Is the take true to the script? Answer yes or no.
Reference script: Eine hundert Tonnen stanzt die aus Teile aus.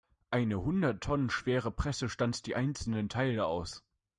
no